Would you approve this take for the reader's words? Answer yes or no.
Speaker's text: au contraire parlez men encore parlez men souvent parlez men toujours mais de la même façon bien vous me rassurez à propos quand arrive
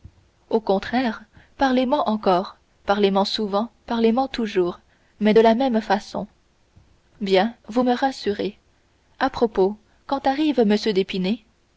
yes